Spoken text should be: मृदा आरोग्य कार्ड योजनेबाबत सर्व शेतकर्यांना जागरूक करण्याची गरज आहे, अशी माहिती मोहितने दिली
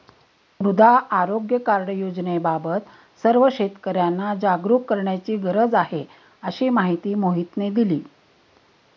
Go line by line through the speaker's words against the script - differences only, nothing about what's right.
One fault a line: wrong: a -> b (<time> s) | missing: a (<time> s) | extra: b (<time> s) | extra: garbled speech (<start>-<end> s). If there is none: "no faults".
no faults